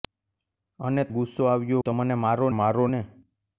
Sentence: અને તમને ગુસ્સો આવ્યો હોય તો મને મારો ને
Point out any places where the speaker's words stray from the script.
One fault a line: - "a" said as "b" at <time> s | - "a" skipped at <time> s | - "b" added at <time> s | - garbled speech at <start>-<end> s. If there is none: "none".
- "તમને" skipped at 1.0 s
- "હોય" skipped at 1.8 s
- "મારો" added at 2.5 s